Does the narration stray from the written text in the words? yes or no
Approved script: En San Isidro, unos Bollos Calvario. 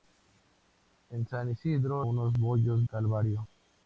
no